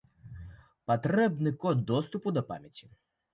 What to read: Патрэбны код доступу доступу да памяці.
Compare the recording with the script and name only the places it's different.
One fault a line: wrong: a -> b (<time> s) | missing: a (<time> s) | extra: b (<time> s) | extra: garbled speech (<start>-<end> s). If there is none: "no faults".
missing: доступу (2.3 s)